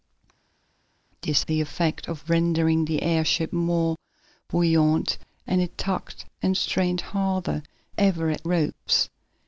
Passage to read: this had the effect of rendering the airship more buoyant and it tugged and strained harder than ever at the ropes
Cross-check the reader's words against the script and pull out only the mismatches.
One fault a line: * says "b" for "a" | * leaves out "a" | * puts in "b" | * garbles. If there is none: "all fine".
* leaves out "had"
* leaves out "than"
* leaves out "the"